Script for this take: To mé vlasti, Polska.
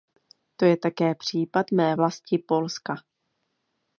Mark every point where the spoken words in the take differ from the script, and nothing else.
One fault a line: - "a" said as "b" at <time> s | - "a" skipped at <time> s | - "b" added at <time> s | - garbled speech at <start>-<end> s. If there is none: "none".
- "je také případ" added at 0.7 s